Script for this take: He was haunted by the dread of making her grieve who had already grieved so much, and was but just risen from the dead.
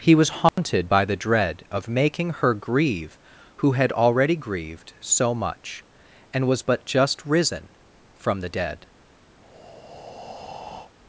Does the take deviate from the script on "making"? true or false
false